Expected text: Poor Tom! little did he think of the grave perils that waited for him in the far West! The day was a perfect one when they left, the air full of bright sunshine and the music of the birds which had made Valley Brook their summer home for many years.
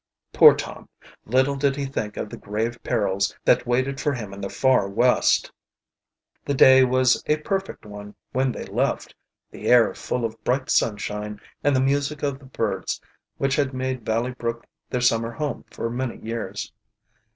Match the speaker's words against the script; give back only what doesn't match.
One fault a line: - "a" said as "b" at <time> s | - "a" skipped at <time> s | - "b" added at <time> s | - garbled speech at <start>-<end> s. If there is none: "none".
none